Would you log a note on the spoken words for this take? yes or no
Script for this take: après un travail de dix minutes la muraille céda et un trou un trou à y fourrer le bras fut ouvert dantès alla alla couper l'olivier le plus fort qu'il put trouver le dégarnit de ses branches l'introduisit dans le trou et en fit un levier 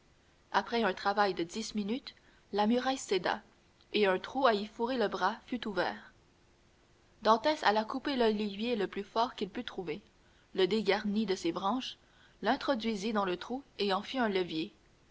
yes